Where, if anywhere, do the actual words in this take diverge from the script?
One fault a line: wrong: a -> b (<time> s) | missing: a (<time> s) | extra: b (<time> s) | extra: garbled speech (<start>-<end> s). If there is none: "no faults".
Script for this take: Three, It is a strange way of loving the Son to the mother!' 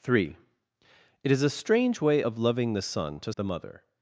no faults